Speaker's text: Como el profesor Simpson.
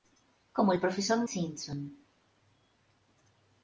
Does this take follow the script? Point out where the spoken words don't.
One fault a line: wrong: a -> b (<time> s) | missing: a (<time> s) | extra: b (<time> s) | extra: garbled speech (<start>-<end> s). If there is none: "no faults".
no faults